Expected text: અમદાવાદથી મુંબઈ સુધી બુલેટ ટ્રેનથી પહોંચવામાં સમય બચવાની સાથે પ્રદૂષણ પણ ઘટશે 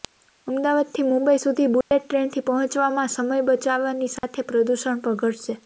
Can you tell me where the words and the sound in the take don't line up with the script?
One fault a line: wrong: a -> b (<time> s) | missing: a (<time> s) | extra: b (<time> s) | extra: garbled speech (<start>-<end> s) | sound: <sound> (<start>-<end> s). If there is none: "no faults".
sound: dropout (1.8-1.9 s)
sound: dropout (4.2-4.2 s)